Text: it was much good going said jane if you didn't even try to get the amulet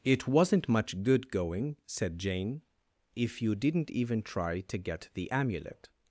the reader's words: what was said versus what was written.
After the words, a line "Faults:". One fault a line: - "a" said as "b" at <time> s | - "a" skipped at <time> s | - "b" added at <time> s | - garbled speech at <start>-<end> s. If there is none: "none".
it wasn't much good going said jane if you didn't even try to get the amulet
Faults:
- "was" said as "wasn't" at 0.3 s